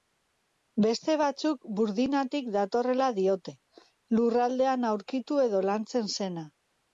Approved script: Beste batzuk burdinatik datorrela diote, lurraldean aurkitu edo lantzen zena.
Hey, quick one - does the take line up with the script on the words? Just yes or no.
yes